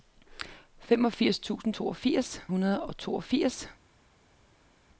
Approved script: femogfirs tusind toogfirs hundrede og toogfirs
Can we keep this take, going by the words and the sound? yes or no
yes